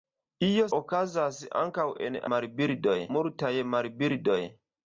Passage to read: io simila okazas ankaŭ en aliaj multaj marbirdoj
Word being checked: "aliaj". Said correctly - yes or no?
no